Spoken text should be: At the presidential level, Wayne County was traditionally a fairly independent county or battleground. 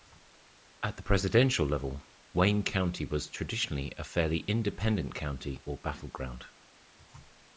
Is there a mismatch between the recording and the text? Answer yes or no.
no